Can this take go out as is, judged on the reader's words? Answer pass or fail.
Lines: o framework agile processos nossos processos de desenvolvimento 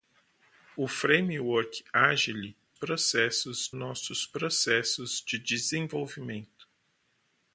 pass